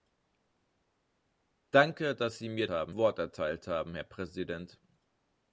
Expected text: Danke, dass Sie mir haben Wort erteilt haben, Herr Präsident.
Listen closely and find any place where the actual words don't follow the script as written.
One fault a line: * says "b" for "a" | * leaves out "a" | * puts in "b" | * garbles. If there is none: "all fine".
all fine